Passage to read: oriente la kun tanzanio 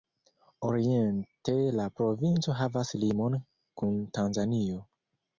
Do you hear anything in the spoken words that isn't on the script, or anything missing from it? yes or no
yes